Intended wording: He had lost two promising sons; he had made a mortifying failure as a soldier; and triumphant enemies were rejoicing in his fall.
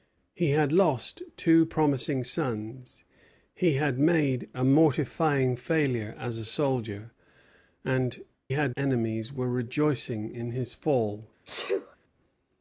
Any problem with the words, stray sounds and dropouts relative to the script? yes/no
yes